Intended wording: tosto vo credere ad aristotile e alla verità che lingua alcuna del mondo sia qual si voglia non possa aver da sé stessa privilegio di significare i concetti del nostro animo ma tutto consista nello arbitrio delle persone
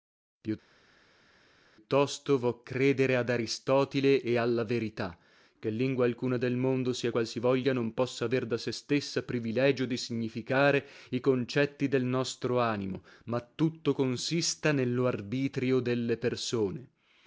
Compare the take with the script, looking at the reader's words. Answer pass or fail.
pass